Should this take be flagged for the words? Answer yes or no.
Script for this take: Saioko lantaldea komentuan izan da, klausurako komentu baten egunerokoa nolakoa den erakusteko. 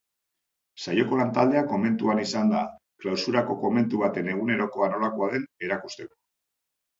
no